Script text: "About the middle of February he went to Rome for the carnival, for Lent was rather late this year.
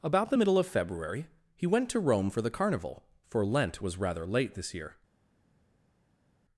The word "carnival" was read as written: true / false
true